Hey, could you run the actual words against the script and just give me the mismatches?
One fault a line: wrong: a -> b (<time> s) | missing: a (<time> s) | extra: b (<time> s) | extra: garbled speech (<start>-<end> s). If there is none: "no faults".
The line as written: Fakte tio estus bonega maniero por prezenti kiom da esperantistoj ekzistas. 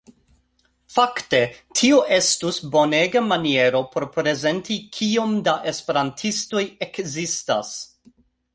no faults